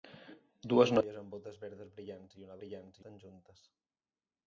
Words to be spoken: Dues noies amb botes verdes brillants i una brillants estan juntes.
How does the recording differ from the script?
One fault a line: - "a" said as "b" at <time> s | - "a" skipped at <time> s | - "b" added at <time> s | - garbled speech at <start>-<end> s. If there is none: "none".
none